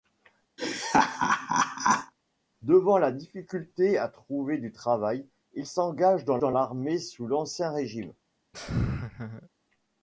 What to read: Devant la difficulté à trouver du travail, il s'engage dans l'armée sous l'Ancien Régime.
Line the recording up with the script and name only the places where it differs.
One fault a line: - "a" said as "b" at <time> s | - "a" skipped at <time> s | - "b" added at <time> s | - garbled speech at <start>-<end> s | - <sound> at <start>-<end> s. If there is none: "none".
- laugh at 0.6-2.1 s
- "dans" added at 6.4 s
- laugh at 8.5-9.5 s